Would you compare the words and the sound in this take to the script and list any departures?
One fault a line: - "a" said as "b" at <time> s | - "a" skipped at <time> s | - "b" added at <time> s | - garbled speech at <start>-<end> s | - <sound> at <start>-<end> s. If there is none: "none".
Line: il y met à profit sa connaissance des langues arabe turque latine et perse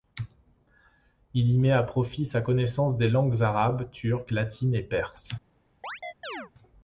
- chirp at 5.8-6.5 s